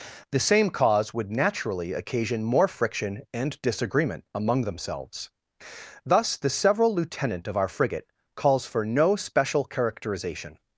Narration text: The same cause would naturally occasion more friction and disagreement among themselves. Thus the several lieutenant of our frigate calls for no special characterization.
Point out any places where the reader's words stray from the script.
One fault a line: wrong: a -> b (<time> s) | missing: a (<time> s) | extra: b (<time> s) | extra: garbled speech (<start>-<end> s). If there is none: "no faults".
no faults